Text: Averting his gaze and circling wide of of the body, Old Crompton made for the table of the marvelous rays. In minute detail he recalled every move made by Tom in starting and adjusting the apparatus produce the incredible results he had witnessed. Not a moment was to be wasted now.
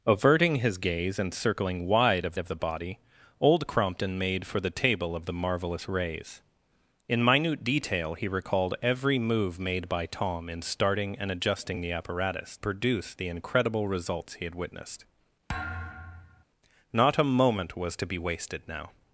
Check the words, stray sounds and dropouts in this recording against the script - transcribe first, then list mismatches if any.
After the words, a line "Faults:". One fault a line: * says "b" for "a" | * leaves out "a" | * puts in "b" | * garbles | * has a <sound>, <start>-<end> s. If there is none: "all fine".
Averting his gaze and circling wide of of the body, Old Crompton made for the table of the marvelous rays. In minute detail he recalled every move made by Tom in starting and adjusting the apparatus produce the incredible results he had witnessed. Not a moment was to be wasted now.
Faults:
* has a thud, 15.5-16.4 s